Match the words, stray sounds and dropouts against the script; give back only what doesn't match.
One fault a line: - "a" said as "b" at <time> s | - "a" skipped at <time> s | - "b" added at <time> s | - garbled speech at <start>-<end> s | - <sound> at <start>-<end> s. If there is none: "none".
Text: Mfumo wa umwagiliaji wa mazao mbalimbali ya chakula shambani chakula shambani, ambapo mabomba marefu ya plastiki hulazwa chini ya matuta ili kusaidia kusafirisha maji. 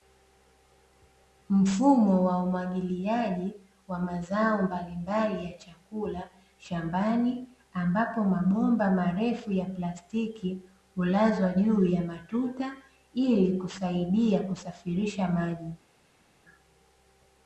- "chakula shambani" skipped at 7.5 s
- "chini" said as "juu" at 11.5 s